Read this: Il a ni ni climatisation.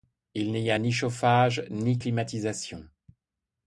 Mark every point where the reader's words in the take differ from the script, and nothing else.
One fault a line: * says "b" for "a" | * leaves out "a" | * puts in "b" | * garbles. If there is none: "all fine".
* puts in "n'y"
* puts in "chauffage"